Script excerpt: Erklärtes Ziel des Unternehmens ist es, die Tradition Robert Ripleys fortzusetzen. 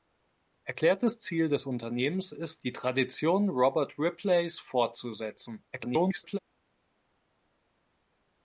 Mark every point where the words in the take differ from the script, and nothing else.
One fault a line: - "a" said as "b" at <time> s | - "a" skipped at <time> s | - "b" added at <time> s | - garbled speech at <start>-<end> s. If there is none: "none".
- "es" skipped at 2.6 s
- garbled speech at 5.7-6.4 s